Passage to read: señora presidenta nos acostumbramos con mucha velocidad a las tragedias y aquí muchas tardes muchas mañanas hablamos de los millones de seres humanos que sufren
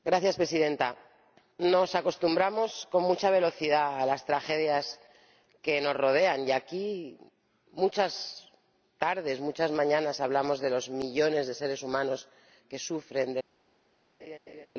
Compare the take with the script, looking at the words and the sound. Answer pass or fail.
fail